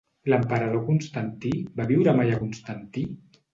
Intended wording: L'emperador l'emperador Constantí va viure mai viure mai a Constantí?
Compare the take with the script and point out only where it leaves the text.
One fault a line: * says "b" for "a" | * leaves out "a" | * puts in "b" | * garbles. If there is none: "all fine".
* leaves out "l'emperador"
* leaves out "viure mai"